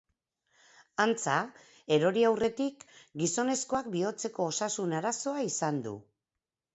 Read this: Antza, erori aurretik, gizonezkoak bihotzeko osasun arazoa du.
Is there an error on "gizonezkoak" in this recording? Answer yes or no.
no